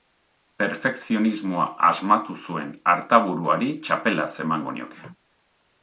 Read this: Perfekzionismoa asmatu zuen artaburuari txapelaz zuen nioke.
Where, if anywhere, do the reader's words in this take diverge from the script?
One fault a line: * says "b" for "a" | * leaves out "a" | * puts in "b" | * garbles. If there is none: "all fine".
* says "emango" for "zuen"